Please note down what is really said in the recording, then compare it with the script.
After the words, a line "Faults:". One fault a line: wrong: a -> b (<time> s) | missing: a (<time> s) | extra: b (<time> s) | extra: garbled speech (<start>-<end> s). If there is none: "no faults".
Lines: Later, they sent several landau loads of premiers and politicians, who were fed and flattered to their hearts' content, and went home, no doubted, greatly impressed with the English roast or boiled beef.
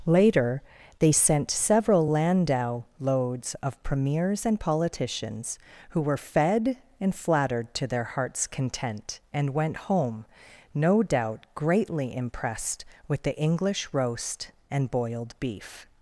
Later, they sent several landau loads of premiers and politicians, who were fed and flattered to their hearts' content, and went home, no doubt, greatly impressed with the English roast and boiled beef.
Faults:
wrong: doubted -> doubt (11.0 s)
wrong: or -> and (14.7 s)